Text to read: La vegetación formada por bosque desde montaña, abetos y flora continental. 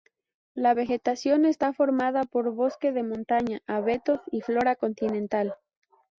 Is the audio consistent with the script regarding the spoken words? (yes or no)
no